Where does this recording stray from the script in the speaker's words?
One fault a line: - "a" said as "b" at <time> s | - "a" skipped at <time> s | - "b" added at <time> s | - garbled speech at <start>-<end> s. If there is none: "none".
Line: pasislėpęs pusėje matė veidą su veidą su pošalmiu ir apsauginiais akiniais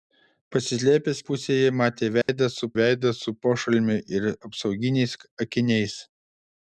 none